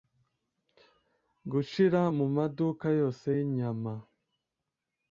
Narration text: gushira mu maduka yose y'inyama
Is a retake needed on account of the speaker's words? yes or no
no